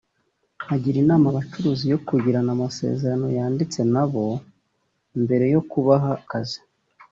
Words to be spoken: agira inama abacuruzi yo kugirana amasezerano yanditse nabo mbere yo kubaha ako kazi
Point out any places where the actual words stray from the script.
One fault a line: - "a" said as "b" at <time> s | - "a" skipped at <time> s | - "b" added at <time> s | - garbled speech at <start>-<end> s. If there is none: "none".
- "ako" skipped at 6.1 s